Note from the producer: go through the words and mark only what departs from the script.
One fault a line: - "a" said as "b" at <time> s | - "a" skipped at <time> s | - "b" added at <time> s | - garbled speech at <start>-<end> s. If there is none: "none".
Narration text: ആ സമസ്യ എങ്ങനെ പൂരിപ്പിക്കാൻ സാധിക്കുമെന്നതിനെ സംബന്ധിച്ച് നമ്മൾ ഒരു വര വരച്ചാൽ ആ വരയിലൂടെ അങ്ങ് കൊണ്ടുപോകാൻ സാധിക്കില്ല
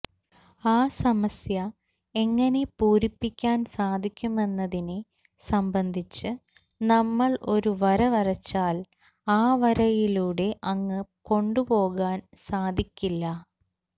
none